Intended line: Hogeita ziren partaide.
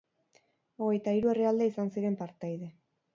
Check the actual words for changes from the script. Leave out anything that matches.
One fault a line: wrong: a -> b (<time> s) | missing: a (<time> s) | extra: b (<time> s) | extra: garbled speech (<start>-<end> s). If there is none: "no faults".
extra: hiru herrialde izan (1.2 s)